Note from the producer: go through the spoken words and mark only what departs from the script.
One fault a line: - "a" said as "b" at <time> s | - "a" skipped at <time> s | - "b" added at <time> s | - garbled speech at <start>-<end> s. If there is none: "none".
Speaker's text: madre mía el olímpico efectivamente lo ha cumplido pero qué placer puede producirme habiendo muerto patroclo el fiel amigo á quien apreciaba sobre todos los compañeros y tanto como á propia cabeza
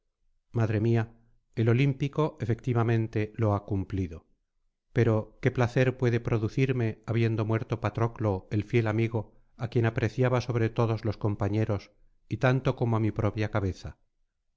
- "mi" added at 13.0 s